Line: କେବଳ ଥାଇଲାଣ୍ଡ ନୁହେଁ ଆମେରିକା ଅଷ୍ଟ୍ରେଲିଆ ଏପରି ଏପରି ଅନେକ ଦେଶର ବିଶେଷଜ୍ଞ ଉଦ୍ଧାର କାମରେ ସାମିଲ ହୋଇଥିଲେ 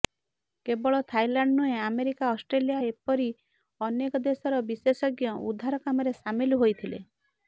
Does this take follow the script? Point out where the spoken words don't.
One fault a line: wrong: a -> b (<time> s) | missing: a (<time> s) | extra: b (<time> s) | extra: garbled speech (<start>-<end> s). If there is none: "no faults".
missing: ଏପରି (3.3 s)